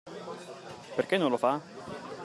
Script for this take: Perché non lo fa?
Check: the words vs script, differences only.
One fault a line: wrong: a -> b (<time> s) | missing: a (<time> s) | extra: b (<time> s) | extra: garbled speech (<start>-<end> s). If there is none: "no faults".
no faults